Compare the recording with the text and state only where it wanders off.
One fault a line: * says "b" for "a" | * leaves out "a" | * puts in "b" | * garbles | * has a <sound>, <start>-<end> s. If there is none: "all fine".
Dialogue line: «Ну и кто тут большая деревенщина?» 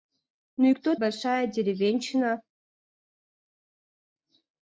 * leaves out "тут"